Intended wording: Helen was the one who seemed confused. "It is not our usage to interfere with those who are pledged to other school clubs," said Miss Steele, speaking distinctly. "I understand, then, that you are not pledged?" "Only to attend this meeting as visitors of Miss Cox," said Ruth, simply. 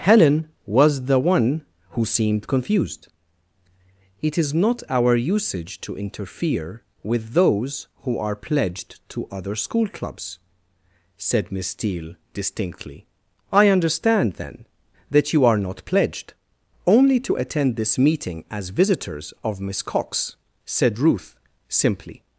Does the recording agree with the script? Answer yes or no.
no